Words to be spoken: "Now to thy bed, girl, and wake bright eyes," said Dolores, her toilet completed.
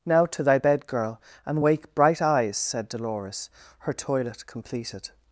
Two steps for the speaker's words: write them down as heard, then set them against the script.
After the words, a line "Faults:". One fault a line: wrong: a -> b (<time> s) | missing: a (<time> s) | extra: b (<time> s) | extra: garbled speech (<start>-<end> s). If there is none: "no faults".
"Now to thy bed, girl, and wake bright eyes," said Dolores, her toilet completed.
Faults:
no faults